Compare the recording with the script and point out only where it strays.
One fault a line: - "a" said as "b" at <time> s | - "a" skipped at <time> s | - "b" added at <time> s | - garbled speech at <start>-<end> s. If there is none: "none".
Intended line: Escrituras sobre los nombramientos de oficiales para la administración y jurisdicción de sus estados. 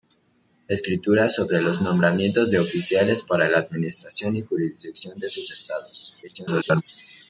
- garbled speech at 6.2-6.8 s